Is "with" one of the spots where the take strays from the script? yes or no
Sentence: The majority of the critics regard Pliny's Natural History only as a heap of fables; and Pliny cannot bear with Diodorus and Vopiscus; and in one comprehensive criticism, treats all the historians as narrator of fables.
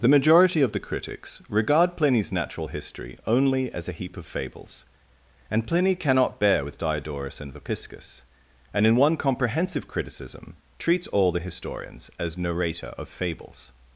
no